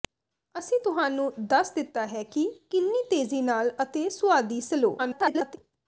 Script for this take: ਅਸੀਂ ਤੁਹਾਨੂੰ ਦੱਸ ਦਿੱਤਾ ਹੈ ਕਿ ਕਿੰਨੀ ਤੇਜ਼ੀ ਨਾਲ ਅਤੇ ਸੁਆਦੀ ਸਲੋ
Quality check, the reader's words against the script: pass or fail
fail